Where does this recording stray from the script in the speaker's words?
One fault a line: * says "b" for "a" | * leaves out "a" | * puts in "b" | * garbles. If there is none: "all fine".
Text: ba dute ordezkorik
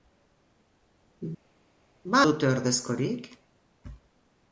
all fine